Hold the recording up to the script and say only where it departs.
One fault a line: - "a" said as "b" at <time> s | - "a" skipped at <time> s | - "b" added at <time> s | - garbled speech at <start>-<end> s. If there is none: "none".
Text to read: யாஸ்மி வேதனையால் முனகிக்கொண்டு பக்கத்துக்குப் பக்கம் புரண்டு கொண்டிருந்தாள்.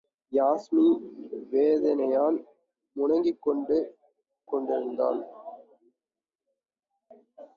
- "பக்கத்துக்குப் பக்கம் புரண்டு" skipped at 3.8 s